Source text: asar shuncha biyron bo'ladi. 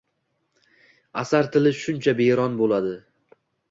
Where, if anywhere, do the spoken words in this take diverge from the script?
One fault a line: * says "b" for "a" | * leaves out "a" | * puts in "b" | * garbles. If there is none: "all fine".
* puts in "tili"